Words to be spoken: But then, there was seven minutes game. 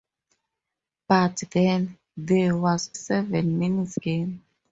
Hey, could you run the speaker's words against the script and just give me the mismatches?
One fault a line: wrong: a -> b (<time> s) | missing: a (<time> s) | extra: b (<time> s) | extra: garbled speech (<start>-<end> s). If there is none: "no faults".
no faults